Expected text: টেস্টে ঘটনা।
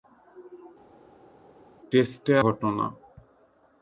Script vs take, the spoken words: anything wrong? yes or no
no